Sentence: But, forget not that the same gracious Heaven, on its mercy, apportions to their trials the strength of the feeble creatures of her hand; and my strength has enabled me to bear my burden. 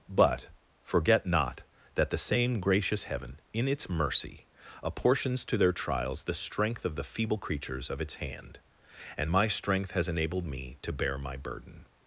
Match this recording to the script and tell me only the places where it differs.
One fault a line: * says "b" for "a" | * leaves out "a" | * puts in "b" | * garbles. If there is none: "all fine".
* says "in" for "on"
* says "its" for "her"